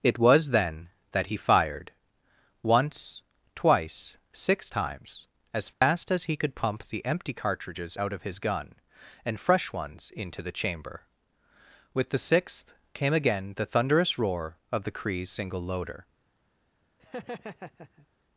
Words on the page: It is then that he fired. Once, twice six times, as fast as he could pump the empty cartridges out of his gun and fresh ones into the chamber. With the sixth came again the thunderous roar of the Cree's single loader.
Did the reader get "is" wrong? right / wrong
wrong